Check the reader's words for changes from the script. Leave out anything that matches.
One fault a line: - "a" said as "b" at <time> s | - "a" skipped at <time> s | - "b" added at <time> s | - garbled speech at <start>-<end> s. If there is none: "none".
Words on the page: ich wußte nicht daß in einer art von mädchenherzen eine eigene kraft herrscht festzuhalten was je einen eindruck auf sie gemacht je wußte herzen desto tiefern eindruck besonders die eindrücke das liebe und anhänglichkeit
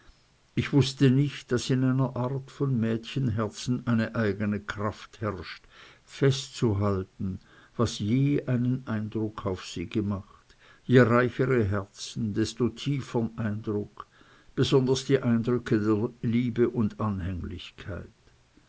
- "wußte" said as "reichere" at 11.0 s
- "das" said as "der" at 15.8 s